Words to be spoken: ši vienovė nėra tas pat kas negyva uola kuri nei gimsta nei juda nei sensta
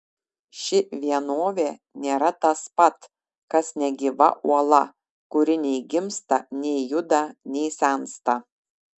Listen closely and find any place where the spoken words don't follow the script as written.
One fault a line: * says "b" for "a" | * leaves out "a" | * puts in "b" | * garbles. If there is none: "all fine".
all fine